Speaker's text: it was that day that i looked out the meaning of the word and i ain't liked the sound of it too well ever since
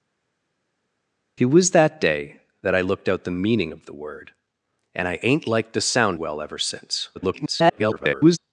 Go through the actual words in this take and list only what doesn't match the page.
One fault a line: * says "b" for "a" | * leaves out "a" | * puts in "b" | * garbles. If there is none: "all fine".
* leaves out "of it too"
* garbles